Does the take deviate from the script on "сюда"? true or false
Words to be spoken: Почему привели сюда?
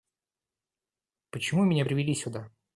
false